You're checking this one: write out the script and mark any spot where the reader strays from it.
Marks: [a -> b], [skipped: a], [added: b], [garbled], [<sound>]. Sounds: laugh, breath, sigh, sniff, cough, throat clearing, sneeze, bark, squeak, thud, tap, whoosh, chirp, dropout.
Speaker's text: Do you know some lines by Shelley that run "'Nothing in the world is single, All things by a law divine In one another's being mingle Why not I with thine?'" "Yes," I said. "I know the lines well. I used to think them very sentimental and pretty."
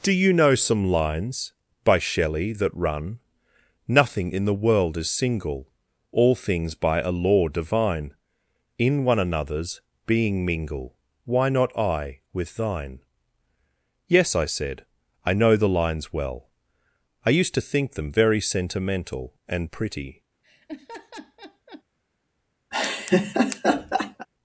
Do you know some lines by Shelley that run "'Nothing in the world is single, All things by a law divine In one another's being mingle Why not I with thine?'" "Yes," I said. "I know the lines well. I used to think them very sentimental and pretty." [laugh] [laugh]